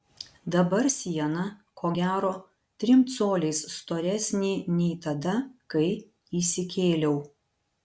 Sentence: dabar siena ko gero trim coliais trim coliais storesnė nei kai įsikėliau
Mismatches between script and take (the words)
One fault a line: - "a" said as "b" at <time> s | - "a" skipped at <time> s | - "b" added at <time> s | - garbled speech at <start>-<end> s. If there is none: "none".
- "trim coliais" skipped at 3.6 s
- "tada" added at 5.1 s